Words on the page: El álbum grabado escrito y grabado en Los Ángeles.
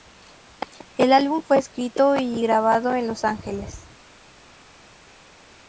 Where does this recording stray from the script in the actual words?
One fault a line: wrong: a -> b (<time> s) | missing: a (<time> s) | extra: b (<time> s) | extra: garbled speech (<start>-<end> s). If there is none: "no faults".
wrong: grabado -> fue (1.4 s)